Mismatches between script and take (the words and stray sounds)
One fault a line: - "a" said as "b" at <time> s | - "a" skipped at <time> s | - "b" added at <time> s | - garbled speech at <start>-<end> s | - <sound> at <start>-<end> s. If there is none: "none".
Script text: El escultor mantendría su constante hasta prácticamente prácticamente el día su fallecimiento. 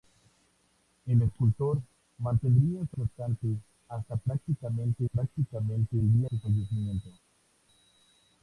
none